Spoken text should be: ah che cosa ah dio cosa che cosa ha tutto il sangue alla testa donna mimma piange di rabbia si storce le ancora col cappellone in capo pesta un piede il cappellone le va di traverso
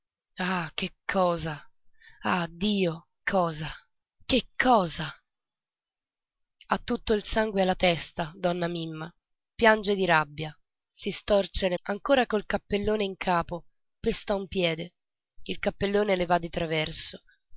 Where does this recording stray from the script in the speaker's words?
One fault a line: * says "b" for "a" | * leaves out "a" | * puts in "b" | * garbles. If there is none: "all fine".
all fine